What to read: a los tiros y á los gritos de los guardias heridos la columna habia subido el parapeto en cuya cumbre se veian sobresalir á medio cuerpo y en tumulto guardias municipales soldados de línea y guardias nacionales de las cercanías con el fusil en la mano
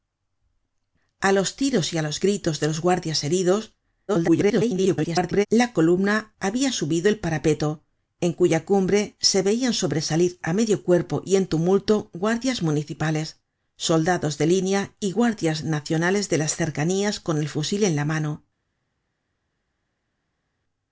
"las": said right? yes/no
yes